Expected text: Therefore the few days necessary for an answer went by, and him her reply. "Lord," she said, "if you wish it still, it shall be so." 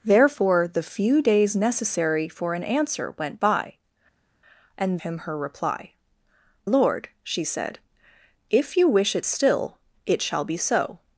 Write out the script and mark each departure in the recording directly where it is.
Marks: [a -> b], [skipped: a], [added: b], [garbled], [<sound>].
Therefore the few days necessary for an answer went by, and him her reply. "Lord," she said, "if you wish it still, it shall be so."